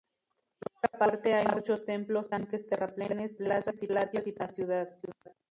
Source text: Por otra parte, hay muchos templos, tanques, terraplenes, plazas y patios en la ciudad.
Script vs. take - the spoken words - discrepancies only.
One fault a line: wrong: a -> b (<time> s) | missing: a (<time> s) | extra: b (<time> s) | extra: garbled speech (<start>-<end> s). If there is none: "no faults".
no faults